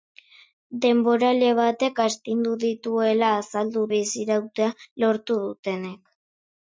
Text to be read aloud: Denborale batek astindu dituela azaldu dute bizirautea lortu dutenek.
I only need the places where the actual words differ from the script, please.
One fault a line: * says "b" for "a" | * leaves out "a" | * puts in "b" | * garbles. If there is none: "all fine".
* leaves out "dute"